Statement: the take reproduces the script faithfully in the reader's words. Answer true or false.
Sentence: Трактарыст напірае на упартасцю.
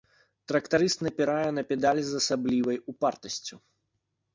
false